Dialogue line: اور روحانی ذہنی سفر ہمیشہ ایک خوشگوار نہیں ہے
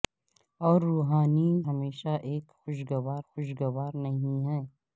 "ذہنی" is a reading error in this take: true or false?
true